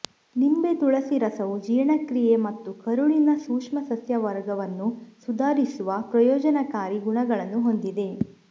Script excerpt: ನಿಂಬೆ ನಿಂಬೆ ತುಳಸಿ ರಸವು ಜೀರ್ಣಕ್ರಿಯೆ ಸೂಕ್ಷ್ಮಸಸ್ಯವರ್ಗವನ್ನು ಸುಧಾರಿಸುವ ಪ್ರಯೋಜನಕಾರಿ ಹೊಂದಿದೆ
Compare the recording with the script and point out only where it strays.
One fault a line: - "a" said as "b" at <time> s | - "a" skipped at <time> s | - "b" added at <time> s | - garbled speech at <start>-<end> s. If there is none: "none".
- "ನಿಂಬೆ" skipped at 0.7 s
- "ಮತ್ತು ಕರುಳಿನ" added at 2.5 s
- "ಗುಣಗಳನ್ನು" added at 7.1 s